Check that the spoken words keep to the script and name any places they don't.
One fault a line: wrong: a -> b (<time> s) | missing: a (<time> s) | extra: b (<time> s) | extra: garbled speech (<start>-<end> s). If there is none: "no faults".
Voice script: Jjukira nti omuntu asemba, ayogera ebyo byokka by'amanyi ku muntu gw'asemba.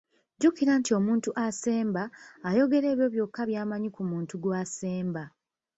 no faults